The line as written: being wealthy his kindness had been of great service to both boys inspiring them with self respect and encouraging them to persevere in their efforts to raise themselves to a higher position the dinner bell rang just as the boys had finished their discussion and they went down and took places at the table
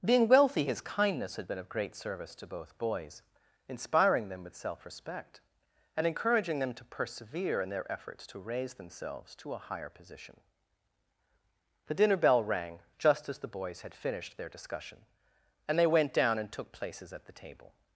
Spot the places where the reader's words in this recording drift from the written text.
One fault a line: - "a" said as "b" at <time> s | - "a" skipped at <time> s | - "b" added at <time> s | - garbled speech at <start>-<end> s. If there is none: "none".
none